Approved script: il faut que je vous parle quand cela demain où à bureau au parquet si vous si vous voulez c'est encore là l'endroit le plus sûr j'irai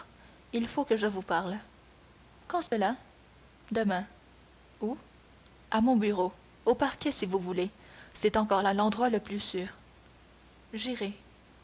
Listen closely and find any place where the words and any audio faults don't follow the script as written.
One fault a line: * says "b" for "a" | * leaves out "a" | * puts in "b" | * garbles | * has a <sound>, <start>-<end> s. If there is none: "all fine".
* has a dropout, 2.7-2.7 s
* puts in "mon"
* leaves out "si vous"